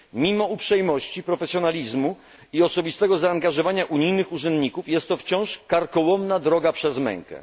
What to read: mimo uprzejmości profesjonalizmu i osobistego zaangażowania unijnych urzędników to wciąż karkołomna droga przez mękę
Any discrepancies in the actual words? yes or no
yes